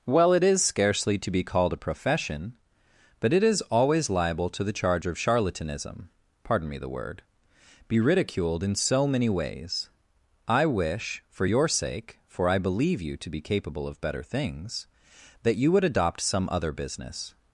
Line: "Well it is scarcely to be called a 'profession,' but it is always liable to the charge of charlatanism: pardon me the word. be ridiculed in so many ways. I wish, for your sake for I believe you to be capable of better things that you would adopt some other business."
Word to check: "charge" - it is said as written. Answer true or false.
true